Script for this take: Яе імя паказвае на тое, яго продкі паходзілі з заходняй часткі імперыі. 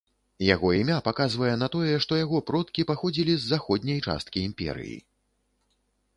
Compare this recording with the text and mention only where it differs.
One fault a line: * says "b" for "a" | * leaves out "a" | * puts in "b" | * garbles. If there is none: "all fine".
* says "Яго" for "Яе"
* puts in "што"